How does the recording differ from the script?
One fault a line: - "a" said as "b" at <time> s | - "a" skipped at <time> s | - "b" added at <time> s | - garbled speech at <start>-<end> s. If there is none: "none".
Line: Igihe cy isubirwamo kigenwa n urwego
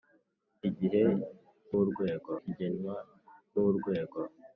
- "isubirwamo" said as "urwego" at 1.8 s